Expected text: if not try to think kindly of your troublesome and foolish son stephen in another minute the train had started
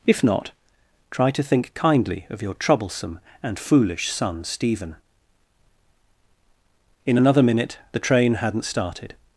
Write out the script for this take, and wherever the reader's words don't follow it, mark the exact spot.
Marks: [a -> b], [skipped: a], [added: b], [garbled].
if not try to think kindly of your troublesome and foolish son stephen in another minute the train [had -> hadn't] started